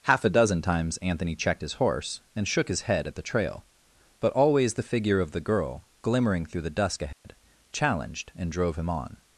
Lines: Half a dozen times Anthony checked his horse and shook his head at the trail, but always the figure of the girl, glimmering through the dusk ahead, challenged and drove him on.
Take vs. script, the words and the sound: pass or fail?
fail